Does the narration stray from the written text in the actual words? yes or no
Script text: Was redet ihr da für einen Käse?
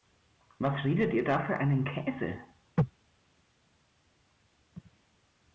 no